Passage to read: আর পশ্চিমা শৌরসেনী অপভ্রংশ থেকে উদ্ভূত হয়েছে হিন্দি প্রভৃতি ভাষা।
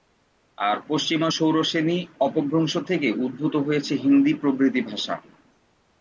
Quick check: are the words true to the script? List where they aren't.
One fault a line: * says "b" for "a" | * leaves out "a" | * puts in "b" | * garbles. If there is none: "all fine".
all fine